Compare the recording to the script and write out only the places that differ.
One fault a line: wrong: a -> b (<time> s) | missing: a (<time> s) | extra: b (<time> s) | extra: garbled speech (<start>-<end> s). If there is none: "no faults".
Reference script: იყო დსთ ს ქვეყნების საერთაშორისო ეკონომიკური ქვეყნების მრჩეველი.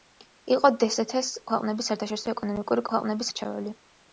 no faults